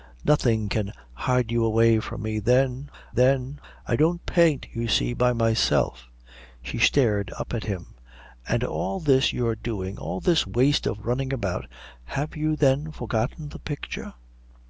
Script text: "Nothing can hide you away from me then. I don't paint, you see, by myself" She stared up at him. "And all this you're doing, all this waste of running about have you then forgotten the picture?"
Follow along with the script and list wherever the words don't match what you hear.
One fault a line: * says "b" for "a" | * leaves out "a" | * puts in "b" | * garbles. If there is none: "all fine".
* puts in "then"